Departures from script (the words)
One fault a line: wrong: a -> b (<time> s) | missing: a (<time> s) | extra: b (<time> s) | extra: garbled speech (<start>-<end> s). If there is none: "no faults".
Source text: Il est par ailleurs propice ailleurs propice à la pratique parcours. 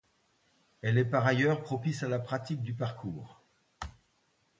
wrong: Il -> Elle (0.8 s)
missing: ailleurs propice (2.0 s)
extra: du (2.6 s)